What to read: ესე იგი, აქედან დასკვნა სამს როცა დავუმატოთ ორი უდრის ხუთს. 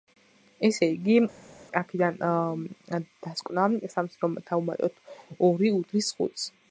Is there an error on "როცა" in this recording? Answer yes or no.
yes